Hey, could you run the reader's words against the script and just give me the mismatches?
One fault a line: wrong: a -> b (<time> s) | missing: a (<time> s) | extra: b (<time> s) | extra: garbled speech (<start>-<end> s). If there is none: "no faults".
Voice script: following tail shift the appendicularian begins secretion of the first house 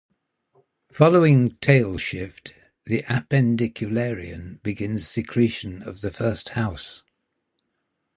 no faults